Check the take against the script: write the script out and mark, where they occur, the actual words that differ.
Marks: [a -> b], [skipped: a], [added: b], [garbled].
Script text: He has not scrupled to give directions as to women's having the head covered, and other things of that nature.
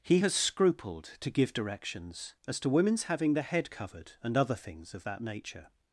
He has [skipped: not] scrupled to give directions as to women's having the head covered, and other things of that nature.